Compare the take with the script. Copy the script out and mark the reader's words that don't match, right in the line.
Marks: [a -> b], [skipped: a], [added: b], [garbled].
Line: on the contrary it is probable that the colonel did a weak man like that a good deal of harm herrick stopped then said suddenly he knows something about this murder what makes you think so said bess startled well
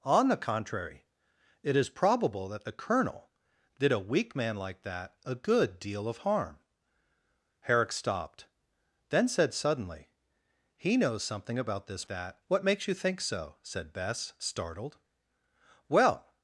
on the contrary it is probable that the colonel did a weak man like that a good deal of harm herrick stopped then said suddenly he knows something about this [murder -> that] what makes you think so said bess startled well